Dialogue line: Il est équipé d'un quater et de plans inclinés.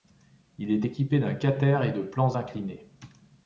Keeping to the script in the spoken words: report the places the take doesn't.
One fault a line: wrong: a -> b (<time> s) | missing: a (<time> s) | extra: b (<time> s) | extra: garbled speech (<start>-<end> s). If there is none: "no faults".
no faults